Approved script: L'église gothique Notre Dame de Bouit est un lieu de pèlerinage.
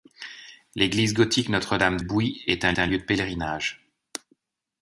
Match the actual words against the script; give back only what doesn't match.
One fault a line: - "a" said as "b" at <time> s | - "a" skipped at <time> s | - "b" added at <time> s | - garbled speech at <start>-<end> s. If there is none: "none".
- "de" skipped at 2.0 s
- "un" added at 2.8 s